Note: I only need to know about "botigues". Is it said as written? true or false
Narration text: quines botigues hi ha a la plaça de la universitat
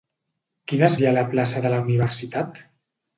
false